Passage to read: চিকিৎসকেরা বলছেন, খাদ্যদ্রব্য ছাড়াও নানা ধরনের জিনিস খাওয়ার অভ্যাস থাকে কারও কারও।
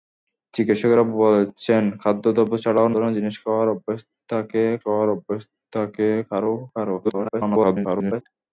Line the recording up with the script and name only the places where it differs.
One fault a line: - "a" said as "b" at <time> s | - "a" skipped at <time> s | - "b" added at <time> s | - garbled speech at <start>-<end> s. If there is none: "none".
- "নানা" skipped at 2.9 s
- "খাওয়ার অভ্যাস থাকে" added at 4.8 s
- garbled speech at 7.0-8.2 s